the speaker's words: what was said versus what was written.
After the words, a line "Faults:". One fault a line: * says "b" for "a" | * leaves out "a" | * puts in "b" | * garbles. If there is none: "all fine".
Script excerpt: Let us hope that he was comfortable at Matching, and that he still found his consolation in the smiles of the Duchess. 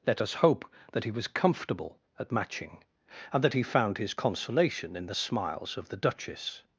Let us hope that he was comfortable at Matching, and that he found his consolation in the smiles of the Duchess.
Faults:
* leaves out "still"